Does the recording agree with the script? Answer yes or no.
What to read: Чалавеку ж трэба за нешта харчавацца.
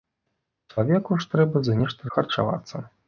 yes